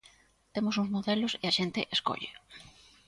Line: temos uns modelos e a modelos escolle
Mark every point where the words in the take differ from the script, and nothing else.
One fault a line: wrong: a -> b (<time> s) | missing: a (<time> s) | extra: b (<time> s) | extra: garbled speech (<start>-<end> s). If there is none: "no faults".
wrong: modelos -> xente (1.6 s)